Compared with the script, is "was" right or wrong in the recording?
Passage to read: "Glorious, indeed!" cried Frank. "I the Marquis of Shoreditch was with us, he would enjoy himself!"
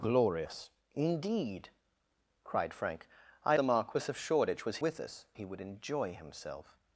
right